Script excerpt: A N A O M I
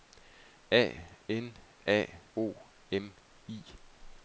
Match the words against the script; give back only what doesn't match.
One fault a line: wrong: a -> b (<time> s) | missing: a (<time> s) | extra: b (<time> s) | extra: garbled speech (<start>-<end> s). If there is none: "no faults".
no faults